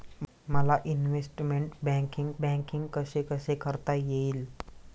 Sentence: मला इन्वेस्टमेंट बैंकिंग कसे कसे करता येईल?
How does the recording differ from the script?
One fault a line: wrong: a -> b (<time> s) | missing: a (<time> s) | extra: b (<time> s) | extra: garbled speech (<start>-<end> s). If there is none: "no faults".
extra: बैंकिंग (2.4 s)